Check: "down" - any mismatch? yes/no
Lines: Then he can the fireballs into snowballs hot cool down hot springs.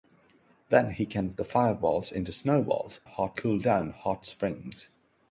no